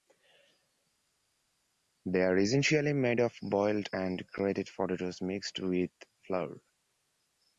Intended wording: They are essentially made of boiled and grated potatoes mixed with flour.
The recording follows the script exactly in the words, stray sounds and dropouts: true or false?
true